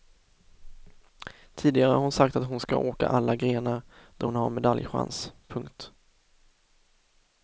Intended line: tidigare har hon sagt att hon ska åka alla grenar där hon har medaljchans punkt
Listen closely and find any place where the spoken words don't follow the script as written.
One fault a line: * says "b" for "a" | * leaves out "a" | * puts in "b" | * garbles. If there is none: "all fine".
all fine